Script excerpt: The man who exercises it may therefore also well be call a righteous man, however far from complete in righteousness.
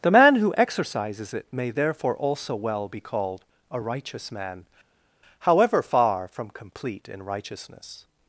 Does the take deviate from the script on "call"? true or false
true